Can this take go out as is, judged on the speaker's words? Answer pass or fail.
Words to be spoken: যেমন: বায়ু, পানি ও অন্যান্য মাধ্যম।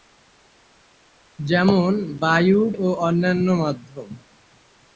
fail